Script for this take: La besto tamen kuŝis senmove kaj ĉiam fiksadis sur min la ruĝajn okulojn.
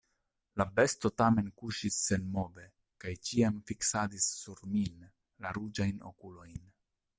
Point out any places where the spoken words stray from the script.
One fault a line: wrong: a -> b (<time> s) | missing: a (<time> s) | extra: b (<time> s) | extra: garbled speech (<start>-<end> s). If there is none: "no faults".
no faults